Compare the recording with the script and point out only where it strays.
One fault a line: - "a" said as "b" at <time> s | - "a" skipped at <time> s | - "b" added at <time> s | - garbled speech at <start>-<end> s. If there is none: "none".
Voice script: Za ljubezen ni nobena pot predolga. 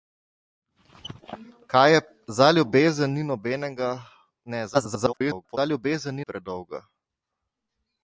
- garbled speech at 4.7-5.6 s
- "nobena pot" skipped at 6.2 s